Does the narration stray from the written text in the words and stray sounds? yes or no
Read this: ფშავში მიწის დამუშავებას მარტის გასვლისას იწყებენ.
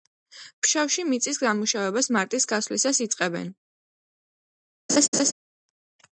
yes